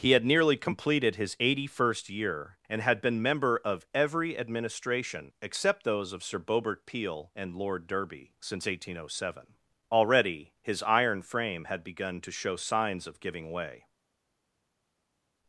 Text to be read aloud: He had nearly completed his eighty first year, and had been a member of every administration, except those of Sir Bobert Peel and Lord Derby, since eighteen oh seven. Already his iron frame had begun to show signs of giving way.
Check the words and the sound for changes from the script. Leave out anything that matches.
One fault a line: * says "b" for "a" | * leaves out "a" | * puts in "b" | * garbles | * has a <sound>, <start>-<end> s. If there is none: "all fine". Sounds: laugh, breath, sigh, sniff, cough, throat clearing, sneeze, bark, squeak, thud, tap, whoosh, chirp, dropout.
* leaves out "a"